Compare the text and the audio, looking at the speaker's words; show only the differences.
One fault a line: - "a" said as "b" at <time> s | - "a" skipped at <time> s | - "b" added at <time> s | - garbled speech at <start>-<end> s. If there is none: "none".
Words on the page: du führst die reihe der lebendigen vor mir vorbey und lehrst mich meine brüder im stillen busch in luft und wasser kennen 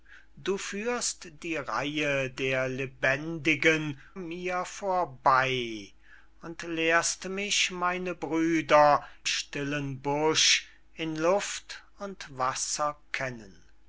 - "vor" skipped at 4.0 s
- "im" skipped at 9.1 s